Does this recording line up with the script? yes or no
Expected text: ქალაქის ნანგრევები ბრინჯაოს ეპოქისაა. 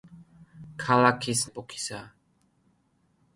no